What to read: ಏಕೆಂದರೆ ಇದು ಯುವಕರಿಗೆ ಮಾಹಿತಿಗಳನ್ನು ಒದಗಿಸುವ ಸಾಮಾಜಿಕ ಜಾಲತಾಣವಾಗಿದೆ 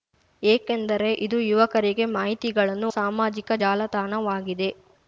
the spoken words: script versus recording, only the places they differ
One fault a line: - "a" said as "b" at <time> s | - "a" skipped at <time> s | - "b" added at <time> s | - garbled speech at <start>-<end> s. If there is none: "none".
- "ಒದಗಿಸುವ" skipped at 2.9 s